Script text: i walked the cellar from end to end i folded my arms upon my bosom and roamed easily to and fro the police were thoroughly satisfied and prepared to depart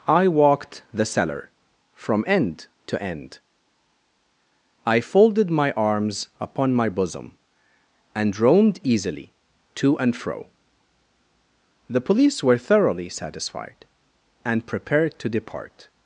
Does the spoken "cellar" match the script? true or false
true